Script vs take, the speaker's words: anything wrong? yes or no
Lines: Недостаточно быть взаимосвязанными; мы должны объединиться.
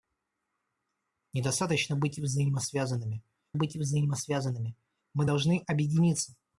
yes